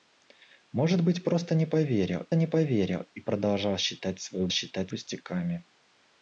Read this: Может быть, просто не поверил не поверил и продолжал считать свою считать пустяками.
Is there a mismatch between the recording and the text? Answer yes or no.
no